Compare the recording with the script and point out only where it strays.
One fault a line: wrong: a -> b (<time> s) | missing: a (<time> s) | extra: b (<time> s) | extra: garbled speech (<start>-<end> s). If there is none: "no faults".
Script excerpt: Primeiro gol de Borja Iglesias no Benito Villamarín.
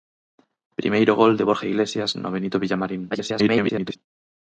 extra: garbled speech (3.1-4.0 s)